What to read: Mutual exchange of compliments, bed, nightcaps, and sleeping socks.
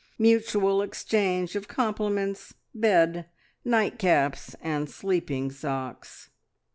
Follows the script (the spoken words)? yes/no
yes